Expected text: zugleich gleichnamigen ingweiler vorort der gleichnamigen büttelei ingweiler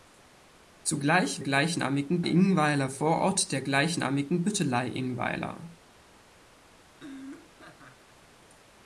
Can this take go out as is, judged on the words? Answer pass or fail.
pass